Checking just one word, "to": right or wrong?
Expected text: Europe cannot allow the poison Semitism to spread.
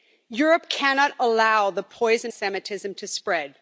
right